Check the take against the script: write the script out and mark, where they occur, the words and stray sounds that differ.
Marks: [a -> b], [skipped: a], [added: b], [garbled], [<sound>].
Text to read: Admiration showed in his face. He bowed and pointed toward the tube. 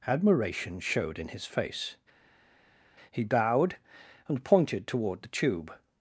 Admiration showed in his face. He bowed and pointed toward the tube.